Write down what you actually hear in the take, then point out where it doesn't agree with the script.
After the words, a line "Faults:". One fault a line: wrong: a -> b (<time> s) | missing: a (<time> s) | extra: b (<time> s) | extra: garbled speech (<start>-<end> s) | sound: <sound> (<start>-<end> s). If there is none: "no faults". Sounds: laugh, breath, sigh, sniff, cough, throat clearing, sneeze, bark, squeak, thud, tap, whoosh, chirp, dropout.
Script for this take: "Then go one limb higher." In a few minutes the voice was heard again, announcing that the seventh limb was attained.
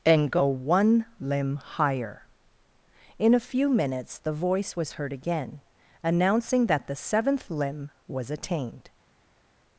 "And go one limb higher." In a few minutes the voice was heard again, announcing that the seventh limb was attained.
Faults:
wrong: Then -> And (0.1 s)